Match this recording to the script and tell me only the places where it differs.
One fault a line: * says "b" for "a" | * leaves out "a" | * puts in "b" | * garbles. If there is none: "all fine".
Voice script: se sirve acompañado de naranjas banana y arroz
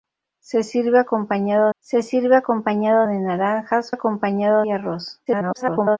* puts in "se sirve acompañado"
* says "acompañado" for "banana"
* garbles